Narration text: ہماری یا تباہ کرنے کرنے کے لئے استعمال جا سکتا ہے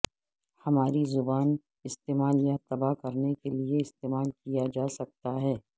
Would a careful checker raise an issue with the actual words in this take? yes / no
yes